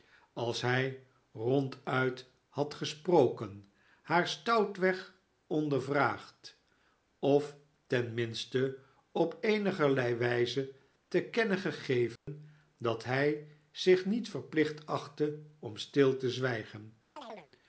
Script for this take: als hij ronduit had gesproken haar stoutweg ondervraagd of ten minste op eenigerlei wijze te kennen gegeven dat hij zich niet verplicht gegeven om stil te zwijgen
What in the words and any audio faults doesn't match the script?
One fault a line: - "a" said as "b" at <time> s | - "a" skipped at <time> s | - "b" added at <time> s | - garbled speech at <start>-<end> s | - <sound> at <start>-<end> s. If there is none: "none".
- dropout at 12.2-12.3 s
- "gegeven" said as "achtte" at 14.9 s
- chirp at 17.2-17.5 s